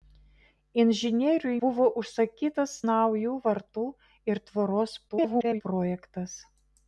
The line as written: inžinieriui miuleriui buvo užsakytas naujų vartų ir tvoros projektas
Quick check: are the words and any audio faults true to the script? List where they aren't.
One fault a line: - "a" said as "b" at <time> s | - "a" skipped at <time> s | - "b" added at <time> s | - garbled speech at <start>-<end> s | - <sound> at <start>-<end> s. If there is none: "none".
- "miuleriui" skipped at 1.6 s
- garbled speech at 5.1-5.6 s